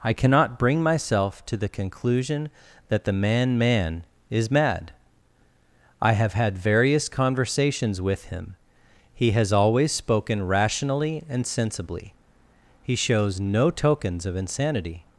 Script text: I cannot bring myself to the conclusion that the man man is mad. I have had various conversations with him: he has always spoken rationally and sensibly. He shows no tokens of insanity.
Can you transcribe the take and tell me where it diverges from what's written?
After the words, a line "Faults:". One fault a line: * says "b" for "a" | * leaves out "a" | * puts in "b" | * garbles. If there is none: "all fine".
I cannot bring myself to the conclusion that the man man is mad. I have had various conversations with him: he has always spoken rationally and sensibly. He shows no tokens of insanity.
Faults:
all fine